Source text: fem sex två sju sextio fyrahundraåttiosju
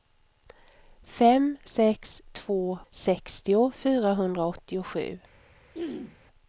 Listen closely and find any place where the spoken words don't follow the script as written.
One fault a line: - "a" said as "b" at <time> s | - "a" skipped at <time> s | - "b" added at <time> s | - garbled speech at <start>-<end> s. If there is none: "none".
- "sju" skipped at 2.8 s